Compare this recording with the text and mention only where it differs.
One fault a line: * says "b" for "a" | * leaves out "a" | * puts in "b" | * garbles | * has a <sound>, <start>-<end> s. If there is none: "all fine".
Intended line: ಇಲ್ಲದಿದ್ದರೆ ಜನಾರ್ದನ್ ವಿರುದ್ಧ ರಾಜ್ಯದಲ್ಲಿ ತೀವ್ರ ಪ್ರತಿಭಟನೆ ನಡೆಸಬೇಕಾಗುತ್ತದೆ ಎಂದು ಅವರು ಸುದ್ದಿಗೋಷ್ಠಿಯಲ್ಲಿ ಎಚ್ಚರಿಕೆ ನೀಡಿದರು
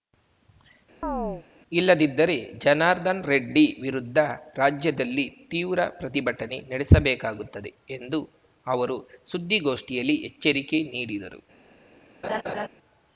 * has a chirp, 1.0-1.5 s
* puts in "ರೆಡ್ಡಿ"
* has a laugh, 12.2-12.7 s